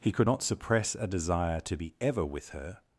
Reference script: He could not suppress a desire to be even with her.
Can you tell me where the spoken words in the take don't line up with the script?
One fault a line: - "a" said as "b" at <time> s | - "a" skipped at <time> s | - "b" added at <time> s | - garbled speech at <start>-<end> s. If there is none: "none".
- "even" said as "ever" at 2.0 s